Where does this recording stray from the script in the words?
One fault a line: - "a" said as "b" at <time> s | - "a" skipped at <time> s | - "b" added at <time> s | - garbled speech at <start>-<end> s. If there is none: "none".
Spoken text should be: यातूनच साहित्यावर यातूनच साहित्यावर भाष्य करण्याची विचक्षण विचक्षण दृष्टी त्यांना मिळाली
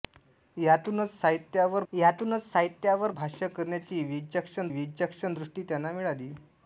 none